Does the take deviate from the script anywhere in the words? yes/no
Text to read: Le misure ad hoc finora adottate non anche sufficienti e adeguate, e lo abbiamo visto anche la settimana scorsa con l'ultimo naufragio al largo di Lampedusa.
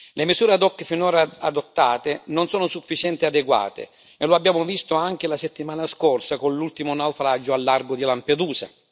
yes